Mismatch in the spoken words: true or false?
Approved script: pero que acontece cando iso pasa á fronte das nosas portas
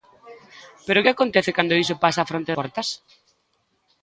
true